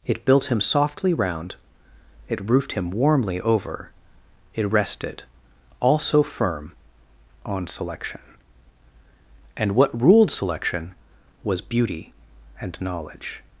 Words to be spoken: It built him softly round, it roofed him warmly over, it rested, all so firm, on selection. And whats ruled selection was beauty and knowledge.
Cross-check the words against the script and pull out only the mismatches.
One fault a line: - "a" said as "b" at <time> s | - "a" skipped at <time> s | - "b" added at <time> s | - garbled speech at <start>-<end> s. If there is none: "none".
- "whats" said as "what" at 9.7 s